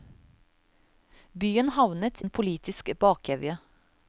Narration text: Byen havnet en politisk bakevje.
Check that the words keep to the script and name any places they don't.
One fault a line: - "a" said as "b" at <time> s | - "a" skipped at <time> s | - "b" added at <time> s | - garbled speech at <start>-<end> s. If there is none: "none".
none